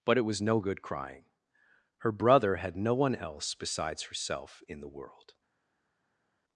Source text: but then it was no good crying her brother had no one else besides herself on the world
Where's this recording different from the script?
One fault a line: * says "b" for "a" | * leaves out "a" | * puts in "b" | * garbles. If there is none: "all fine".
* leaves out "then"
* says "in" for "on"